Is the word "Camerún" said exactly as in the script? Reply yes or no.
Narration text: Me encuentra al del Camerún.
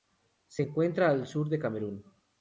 yes